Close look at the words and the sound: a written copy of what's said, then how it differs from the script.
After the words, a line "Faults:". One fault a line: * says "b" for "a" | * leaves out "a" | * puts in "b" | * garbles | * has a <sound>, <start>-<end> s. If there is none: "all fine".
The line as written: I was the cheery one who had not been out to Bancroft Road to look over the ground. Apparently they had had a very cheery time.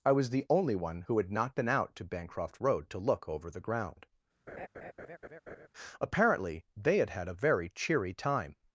I was the only one who had not been out to Bancroft Road to look over the ground. Apparently they had had a very cheery time.
Faults:
* says "only" for "cheery"
* has a laugh, 4.5-5.7 s